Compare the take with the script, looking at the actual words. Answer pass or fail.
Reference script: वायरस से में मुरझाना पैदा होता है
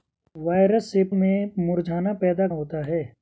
pass